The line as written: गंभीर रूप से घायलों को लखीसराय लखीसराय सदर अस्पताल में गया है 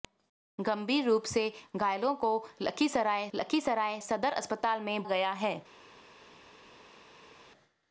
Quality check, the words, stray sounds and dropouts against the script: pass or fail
pass